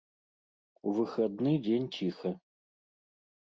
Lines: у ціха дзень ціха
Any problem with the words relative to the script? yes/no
yes